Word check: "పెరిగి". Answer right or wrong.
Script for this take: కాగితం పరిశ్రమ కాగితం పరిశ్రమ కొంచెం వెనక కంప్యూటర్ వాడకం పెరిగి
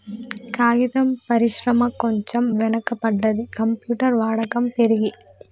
right